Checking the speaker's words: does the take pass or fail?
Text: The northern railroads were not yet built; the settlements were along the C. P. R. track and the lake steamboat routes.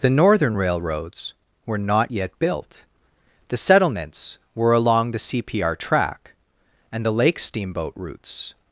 pass